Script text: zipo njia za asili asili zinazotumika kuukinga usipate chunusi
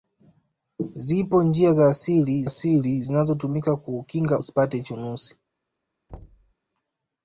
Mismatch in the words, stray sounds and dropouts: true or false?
true